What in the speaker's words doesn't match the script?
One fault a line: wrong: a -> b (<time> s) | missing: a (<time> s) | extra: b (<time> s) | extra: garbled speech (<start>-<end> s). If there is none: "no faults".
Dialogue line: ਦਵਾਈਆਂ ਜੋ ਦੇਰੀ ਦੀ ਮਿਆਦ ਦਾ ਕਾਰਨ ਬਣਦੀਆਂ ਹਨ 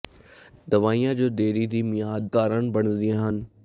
missing: ਦਾ (2.3 s)